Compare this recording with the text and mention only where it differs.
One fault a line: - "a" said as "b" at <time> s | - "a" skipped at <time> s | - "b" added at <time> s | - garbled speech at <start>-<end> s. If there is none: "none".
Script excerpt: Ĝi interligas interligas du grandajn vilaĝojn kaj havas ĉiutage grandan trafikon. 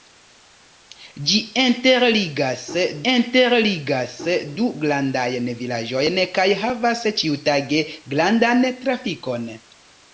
none